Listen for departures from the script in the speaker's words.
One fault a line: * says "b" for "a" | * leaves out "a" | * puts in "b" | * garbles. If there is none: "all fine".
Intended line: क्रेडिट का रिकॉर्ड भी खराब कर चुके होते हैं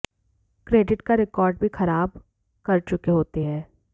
all fine